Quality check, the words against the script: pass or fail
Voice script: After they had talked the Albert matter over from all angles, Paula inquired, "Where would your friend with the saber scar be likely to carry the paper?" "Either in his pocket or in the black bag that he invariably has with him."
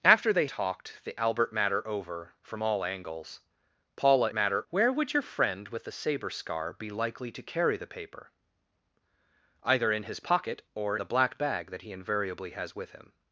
fail